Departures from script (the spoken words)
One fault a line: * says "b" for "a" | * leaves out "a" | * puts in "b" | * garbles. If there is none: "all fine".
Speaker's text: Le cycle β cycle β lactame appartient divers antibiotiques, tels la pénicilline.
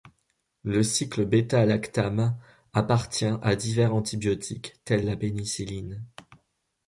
* leaves out "cycle β"
* puts in "à"